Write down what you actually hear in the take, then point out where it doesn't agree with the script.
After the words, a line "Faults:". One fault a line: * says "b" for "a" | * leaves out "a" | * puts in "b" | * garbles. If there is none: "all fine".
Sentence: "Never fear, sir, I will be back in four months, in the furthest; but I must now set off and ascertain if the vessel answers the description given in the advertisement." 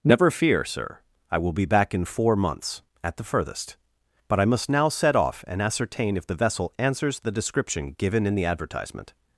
"Never fear, sir, I will be back in four months, at the furthest; but I must now set off and ascertain if the vessel answers the description given in the advertisement."
Faults:
* says "at" for "in"